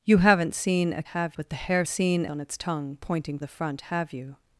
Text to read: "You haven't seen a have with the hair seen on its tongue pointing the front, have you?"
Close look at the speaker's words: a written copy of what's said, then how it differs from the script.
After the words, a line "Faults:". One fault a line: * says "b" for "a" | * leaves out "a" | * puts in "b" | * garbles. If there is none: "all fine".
"You haven't seen a have with the hair seen on its tongue pointing the front, have you?"
Faults:
all fine